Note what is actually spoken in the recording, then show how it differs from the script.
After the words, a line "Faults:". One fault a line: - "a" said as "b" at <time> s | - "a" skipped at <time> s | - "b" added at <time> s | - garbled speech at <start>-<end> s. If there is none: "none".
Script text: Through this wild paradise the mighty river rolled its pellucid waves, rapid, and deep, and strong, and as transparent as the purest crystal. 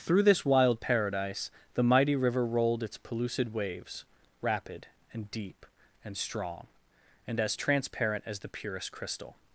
Through this wild paradise the mighty river rolled its pellucid waves, rapid, and deep, and strong, and as transparent as the purest crystal.
Faults:
none